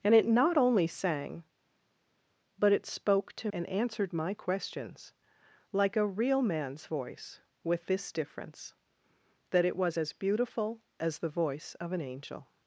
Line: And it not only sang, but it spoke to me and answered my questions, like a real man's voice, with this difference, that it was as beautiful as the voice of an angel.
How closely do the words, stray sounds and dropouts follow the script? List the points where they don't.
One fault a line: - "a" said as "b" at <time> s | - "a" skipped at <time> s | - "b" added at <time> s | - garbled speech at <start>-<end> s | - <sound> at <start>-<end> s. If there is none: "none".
- "me" skipped at 3.5 s